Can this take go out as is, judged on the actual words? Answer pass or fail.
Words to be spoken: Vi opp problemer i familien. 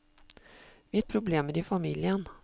pass